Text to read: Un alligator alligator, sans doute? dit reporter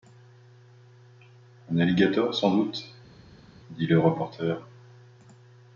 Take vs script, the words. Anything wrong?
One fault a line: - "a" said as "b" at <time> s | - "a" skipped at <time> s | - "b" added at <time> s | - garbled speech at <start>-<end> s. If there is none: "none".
- "alligator" skipped at 2.3 s
- "le" added at 3.9 s